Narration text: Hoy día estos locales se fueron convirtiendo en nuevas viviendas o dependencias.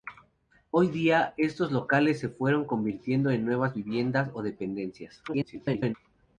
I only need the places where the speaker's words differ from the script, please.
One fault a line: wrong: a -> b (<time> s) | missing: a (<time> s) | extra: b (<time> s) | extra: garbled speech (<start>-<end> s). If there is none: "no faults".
extra: garbled speech (5.3-6.0 s)